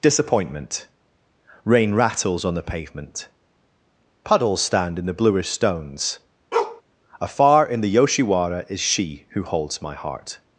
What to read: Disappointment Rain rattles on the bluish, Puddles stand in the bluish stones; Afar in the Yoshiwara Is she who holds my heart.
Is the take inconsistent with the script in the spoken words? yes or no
yes